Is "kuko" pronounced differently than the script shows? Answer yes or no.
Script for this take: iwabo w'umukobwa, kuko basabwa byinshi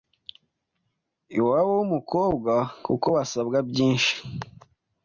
no